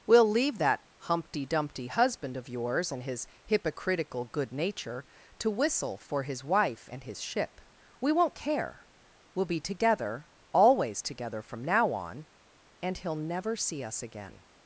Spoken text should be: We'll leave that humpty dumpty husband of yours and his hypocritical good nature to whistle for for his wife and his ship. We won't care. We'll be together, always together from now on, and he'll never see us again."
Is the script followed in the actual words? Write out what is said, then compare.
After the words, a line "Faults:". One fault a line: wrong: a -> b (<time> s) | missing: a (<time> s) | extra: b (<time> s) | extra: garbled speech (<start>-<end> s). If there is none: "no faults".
We'll leave that humpty dumpty husband of yours and his hypocritical good nature to whistle for his wife and his ship. We won't care. We'll be together, always together from now on, and he'll never see us again."
Faults:
missing: for (6.2 s)